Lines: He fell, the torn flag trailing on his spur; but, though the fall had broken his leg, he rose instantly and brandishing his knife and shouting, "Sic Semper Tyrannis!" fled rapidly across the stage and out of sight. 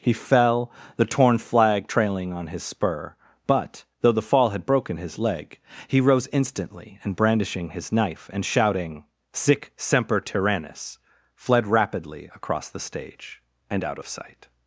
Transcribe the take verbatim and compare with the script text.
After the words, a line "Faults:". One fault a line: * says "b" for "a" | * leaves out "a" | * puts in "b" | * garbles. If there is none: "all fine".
He fell, the torn flag trailing on his spur; but, though the fall had broken his leg, he rose instantly and brandishing his knife and shouting, "Sic Semper Tyrannis!" fled rapidly across the stage and out of sight.
Faults:
all fine